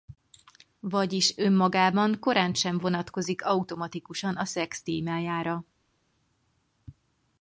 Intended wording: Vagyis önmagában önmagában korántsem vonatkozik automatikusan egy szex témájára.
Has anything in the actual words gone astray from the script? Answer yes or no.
yes